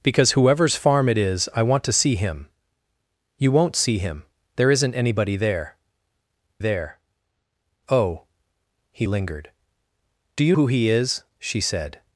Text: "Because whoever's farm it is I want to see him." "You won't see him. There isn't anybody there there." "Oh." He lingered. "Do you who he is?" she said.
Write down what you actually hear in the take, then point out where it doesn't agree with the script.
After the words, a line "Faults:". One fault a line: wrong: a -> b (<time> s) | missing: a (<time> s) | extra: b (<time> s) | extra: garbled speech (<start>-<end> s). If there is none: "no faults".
"Because whoever's farm it is I want to see him." "You won't see him. There isn't anybody there there." "Oh." He lingered. "Do you who he is?" she said.
Faults:
no faults